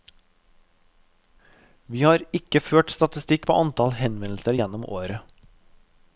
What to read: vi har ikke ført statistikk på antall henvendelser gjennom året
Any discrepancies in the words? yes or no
no